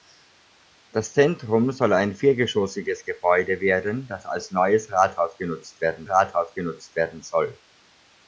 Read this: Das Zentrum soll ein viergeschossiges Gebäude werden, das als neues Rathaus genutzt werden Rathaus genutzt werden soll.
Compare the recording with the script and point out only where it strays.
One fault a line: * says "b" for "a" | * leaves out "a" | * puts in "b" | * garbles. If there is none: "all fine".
all fine